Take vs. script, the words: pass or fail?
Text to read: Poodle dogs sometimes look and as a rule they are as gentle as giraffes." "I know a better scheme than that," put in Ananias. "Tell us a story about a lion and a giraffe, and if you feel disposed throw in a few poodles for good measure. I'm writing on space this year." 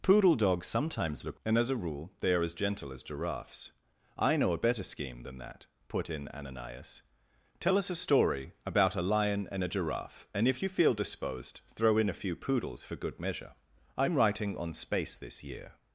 pass